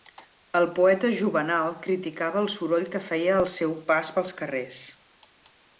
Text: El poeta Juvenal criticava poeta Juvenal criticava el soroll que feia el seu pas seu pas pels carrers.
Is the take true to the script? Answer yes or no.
no